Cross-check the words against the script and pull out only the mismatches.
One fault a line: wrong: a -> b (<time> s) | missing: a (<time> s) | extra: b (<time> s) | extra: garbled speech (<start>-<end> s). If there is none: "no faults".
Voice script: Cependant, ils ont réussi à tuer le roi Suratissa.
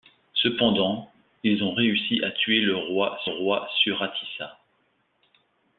extra: roi (3.3 s)